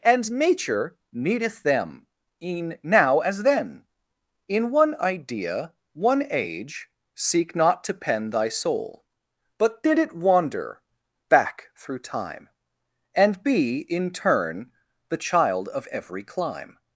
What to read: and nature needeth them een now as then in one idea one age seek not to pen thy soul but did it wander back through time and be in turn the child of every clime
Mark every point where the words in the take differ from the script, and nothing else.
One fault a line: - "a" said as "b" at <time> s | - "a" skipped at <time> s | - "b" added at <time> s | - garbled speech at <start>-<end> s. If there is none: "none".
none